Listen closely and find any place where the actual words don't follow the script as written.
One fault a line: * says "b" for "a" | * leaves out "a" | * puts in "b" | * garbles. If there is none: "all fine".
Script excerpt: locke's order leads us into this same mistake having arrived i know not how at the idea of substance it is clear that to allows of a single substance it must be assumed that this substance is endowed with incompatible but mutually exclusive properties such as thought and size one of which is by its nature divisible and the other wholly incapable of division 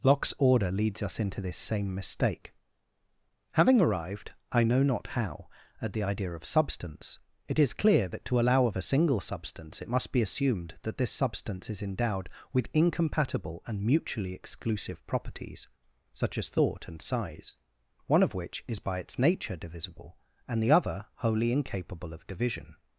* says "allow" for "allows"
* says "and" for "but"